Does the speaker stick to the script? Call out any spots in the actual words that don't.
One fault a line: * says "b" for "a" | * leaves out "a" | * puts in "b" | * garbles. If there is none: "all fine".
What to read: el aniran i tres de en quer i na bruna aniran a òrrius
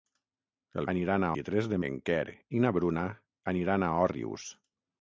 all fine